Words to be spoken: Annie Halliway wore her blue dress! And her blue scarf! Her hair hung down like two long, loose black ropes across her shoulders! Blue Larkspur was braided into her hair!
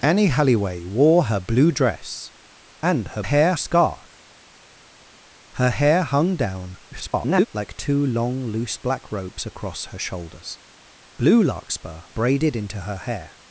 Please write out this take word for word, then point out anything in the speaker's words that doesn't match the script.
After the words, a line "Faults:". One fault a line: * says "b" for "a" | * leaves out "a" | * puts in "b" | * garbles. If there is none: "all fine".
Annie Halliway wore her blue dress! And her hair scarf! Her hair hung down [garbled] like two long, loose black ropes across her shoulders! Blue Larkspur braided into her hair!
Faults:
* says "hair" for "blue"
* garbles
* leaves out "was"